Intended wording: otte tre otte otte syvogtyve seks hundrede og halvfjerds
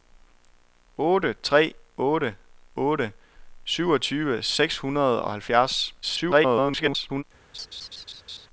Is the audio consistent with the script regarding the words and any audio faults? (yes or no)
no